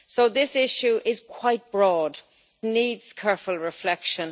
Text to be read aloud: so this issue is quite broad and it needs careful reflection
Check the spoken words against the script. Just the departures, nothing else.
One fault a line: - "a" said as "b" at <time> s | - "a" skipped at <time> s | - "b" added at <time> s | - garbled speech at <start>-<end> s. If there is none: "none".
- "and it" skipped at 2.2 s